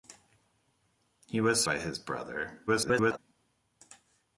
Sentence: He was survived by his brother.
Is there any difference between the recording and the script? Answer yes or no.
yes